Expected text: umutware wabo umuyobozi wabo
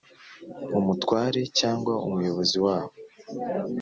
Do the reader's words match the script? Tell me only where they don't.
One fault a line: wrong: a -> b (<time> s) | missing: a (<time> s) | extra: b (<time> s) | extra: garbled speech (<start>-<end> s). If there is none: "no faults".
wrong: wabo -> cyangwa (1.6 s)